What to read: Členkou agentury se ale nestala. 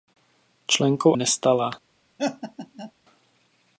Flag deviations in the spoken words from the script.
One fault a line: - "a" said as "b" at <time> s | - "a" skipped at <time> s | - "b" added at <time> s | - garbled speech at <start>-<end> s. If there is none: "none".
- "agentury se ale" skipped at 1.1 s